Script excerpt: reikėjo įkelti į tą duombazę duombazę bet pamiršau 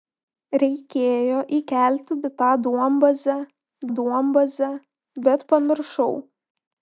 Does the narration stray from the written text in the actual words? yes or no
no